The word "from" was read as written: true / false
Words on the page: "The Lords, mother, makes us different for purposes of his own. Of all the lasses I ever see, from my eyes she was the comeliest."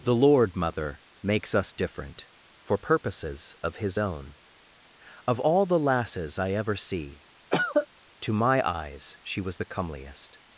false